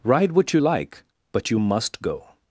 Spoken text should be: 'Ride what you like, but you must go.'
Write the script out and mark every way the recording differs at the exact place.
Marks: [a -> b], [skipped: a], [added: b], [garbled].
'Ride what you like, but you must go.'